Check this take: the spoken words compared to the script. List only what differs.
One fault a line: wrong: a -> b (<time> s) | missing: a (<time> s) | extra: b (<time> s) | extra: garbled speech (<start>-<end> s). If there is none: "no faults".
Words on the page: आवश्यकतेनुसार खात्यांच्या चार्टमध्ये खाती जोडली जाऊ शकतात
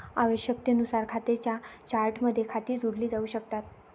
no faults